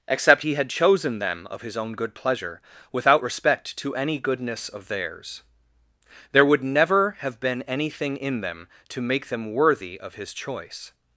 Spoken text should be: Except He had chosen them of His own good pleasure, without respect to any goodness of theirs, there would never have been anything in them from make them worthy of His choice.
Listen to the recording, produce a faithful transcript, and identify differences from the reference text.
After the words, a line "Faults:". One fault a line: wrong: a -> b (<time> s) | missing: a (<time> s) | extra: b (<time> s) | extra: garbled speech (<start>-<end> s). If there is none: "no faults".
Except He had chosen them of His own good pleasure, without respect to any goodness of theirs, there would never have been anything in them to make them worthy of His choice.
Faults:
wrong: from -> to (8.9 s)